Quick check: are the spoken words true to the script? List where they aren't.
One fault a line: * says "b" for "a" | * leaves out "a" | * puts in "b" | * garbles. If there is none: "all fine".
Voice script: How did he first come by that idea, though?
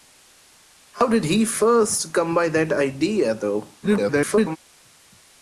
* garbles